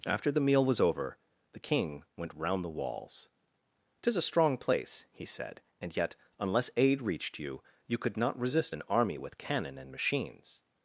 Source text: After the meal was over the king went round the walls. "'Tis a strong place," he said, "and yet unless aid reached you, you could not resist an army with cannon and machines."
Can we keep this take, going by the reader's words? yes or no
yes